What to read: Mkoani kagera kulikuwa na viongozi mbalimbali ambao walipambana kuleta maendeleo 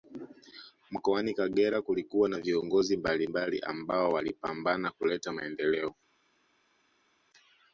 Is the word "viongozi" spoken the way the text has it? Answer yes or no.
yes